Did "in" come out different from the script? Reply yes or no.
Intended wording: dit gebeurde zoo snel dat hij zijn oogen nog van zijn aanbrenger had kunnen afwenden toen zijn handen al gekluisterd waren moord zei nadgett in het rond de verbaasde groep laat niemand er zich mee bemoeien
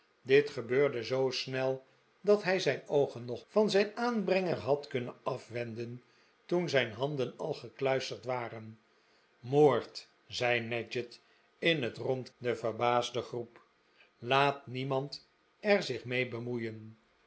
no